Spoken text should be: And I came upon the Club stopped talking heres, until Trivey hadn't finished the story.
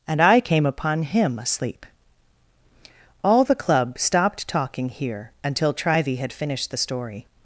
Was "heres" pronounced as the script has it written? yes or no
no